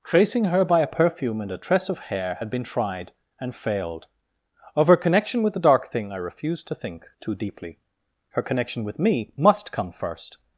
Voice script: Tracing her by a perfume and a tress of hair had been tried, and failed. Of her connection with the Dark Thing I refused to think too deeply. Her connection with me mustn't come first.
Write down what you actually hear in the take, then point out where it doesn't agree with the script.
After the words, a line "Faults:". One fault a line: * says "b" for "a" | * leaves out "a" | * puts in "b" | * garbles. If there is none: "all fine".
Tracing her by a perfume and a tress of hair had been tried, and failed. Of her connection with the Dark Thing I refused to think too deeply. Her connection with me must come first.
Faults:
* says "must" for "mustn't"